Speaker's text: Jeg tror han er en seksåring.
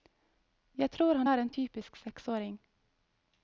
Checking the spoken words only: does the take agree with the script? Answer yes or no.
no